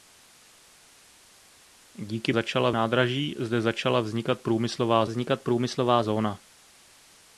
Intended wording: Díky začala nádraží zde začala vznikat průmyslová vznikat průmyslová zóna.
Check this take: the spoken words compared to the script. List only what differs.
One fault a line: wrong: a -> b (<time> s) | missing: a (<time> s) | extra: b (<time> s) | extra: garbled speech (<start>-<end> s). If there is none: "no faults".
no faults